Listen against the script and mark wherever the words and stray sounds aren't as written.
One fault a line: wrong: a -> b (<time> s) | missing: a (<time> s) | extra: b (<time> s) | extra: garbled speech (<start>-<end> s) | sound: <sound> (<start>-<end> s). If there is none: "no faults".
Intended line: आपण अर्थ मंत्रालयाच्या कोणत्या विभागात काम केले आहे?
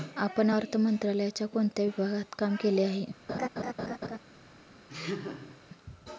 sound: laugh (3.3-4.2 s)
sound: laugh (4.9-5.6 s)